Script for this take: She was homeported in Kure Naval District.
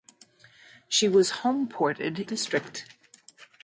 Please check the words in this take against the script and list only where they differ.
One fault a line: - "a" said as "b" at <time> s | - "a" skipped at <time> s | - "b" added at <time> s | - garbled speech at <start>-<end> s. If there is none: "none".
- "in Kure Naval" skipped at 2.3 s